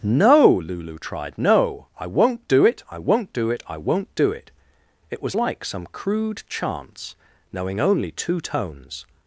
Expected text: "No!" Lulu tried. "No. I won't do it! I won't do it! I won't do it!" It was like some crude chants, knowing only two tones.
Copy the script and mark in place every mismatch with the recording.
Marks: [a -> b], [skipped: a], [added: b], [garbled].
"No!" Lulu tried. "No. I won't do it! I won't do it! I won't do it!" It was like some crude chants, knowing only two tones.